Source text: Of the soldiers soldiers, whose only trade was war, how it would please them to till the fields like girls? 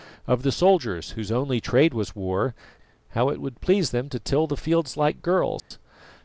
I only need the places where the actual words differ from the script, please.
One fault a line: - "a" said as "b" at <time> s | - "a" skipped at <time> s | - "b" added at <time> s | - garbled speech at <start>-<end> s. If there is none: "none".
- "soldiers" skipped at 1.1 s